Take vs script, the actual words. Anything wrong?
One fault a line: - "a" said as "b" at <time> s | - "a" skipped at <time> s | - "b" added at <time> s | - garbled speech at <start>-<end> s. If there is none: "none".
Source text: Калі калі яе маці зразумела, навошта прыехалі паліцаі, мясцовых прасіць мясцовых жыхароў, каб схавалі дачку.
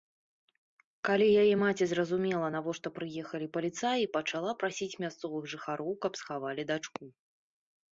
- "калі" skipped at 1.3 s
- "мясцовых" said as "пачала" at 4.2 s